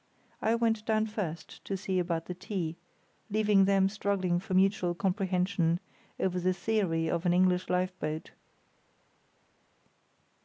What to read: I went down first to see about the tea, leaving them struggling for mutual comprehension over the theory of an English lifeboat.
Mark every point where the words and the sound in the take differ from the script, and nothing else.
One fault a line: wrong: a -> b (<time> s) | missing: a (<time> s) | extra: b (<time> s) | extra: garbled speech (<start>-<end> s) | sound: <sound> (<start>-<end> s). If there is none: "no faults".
no faults